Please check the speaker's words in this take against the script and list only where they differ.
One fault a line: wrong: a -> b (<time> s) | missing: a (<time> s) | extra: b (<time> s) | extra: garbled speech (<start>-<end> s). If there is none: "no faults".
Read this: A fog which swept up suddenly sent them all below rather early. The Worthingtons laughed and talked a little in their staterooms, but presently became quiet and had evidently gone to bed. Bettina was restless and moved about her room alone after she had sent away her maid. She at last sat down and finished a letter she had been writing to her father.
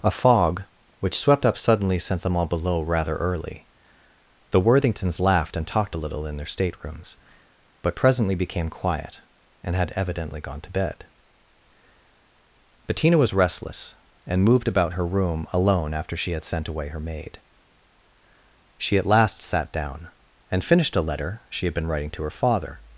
no faults